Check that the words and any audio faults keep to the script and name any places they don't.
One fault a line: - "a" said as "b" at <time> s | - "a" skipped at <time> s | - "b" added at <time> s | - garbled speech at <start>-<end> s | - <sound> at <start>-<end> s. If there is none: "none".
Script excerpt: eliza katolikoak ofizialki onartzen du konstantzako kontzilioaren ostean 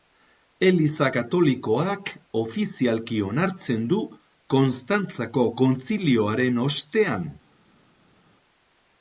none